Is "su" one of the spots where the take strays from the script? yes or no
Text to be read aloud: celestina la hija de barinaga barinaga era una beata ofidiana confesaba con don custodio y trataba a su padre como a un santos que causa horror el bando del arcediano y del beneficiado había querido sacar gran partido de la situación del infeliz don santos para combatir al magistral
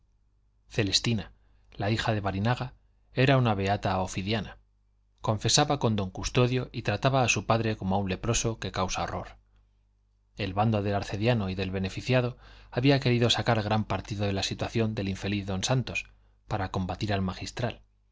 no